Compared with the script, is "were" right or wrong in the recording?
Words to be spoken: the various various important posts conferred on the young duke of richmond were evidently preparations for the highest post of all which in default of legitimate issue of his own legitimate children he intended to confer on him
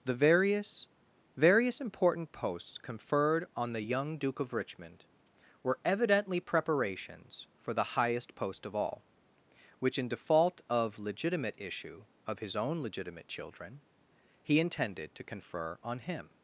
right